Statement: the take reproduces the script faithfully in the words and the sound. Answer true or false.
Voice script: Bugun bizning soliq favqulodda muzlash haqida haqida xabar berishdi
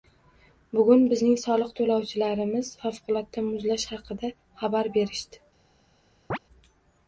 false